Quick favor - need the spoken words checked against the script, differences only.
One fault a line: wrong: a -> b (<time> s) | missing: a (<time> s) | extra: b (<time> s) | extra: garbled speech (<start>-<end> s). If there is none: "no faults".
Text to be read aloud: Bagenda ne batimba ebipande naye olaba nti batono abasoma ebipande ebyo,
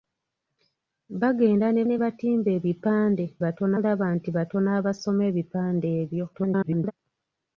extra: ne (1.8 s)
wrong: naye -> batono (3.4 s)
extra: garbled speech (6.3-6.9 s)